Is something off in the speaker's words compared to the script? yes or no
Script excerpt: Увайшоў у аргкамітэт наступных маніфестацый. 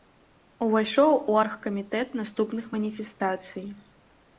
no